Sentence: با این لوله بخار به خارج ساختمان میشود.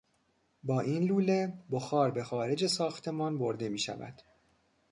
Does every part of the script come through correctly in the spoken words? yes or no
no